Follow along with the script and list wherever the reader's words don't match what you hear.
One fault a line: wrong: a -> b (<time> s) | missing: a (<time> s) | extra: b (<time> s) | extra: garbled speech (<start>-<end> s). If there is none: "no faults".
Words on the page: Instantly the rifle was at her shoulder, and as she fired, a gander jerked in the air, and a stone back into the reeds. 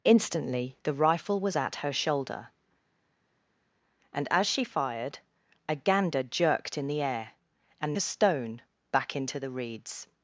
no faults